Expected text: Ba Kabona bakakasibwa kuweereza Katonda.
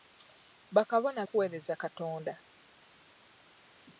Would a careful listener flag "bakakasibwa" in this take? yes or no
yes